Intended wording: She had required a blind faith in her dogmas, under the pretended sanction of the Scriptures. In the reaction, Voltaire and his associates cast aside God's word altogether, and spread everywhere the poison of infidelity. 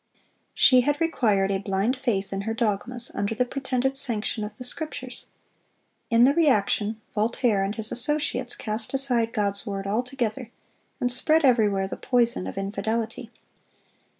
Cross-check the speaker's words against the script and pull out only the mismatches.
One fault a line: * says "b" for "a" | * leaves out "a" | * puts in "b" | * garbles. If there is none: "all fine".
all fine